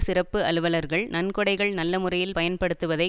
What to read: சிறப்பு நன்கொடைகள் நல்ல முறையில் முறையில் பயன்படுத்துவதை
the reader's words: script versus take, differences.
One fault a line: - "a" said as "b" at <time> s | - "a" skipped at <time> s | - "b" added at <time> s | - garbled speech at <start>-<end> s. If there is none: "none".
- "அலுவலர்கள்" added at 0.4 s
- "முறையில்" skipped at 2.3 s